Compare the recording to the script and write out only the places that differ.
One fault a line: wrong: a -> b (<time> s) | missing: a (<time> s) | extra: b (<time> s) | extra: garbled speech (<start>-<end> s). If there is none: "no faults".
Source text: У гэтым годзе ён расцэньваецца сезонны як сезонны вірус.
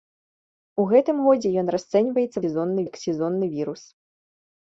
no faults